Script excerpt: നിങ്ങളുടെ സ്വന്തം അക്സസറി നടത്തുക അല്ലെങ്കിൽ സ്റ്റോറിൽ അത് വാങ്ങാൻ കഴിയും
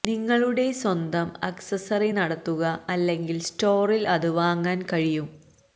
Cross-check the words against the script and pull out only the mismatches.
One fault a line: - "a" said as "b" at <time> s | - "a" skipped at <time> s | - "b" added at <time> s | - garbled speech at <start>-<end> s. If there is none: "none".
none